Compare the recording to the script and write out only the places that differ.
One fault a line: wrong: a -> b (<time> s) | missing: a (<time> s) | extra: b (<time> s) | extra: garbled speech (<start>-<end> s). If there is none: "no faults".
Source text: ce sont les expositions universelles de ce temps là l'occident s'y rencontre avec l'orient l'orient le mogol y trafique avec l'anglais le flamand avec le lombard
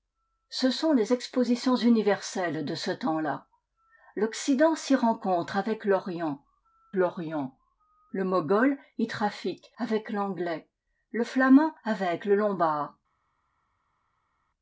no faults